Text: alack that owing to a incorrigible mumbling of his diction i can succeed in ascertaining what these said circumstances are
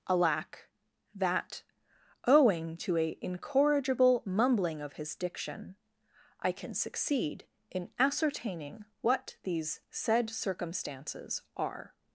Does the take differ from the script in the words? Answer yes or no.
no